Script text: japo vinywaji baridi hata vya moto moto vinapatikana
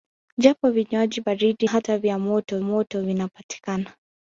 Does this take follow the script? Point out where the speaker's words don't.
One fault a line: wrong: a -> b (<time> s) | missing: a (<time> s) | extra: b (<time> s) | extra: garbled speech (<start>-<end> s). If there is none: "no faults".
no faults